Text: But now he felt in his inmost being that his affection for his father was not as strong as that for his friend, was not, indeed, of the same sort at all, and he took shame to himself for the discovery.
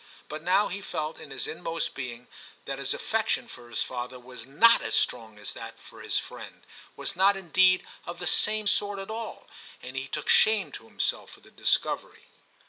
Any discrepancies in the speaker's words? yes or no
no